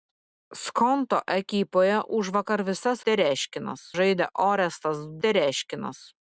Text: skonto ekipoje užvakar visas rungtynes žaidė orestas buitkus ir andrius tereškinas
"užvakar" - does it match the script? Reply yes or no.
yes